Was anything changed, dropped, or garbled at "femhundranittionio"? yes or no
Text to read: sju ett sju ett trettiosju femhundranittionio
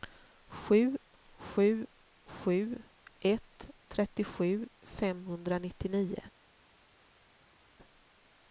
no